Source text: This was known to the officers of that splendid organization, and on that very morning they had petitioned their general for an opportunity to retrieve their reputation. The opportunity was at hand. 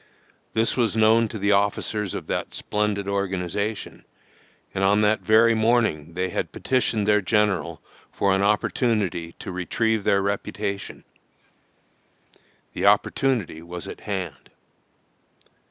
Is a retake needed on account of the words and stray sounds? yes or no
no